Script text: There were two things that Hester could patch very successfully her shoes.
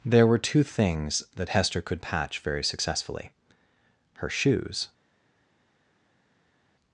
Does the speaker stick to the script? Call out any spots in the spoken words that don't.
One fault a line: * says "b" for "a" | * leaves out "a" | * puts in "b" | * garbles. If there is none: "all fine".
all fine